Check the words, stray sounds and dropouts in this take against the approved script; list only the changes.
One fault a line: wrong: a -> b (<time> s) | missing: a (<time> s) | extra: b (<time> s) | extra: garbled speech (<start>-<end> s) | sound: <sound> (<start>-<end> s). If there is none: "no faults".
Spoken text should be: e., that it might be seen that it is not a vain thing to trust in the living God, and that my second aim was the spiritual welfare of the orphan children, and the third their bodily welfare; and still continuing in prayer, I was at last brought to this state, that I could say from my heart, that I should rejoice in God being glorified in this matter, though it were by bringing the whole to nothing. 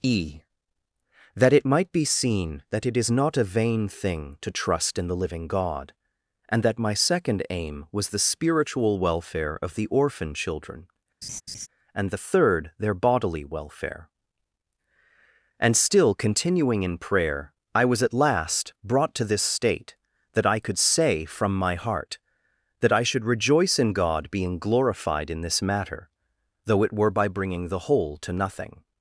sound: laugh (11.2-11.7 s)